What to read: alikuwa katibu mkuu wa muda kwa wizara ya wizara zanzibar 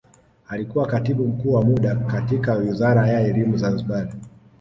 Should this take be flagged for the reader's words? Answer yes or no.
yes